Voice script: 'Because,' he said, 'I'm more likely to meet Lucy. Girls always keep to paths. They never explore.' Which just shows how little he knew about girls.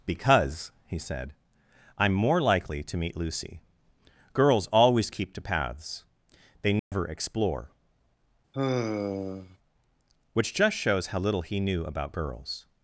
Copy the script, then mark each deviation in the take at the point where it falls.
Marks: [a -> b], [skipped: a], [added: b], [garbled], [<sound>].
'Because,' he said, 'I'm more likely to meet Lucy. Girls always keep to paths. They never [dropout] explore.' [sigh] Which just shows how little he knew about girls.